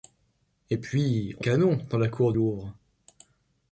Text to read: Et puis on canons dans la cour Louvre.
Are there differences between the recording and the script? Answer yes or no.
no